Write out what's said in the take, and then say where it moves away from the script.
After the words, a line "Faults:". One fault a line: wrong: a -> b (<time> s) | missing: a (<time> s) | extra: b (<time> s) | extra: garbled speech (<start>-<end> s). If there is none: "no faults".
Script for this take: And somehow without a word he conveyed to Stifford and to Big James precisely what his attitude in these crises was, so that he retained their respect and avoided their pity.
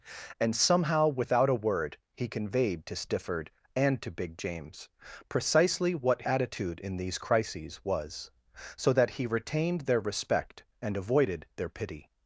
And somehow without a word he conveyed to Stifford and to Big James precisely what attitude in these crises was, so that he retained their respect and avoided their pity.
Faults:
missing: his (6.2 s)